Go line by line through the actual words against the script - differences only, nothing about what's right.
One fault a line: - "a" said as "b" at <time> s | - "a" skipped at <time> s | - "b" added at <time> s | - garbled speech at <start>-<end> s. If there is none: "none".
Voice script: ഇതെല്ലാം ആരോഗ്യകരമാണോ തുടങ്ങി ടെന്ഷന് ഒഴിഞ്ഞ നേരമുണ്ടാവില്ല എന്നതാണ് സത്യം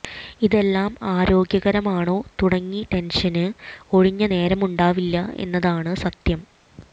none